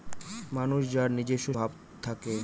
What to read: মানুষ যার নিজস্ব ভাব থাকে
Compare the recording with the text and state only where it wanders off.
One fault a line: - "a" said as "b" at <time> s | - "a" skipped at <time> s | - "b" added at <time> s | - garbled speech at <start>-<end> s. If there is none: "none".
none